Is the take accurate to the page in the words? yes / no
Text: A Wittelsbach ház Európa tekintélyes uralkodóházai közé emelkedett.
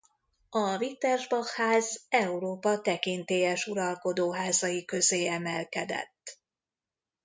yes